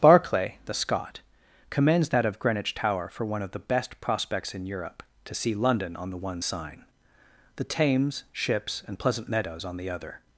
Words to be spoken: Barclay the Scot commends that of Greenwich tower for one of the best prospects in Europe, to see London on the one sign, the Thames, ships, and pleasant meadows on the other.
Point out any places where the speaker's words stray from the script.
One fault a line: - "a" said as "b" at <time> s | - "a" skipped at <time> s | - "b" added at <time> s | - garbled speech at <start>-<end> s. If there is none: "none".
none